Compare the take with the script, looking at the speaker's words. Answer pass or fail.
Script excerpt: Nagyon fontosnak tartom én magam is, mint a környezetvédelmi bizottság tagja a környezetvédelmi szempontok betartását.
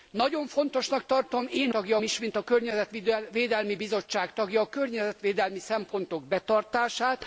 fail